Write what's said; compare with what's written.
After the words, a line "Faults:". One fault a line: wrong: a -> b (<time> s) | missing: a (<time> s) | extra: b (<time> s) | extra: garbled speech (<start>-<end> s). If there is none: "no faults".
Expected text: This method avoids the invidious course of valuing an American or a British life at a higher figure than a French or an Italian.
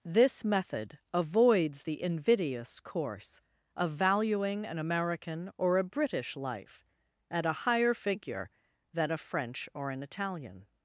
This method avoids the invidious course of valuing an American or a British life at a higher figure than a French or an Italian.
Faults:
no faults